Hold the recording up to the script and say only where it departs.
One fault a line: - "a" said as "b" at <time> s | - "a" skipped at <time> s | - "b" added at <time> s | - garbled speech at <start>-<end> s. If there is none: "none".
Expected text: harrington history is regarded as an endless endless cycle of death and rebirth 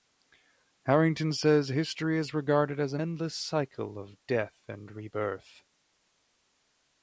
- "says" added at 1.3 s
- "endless" skipped at 3.3 s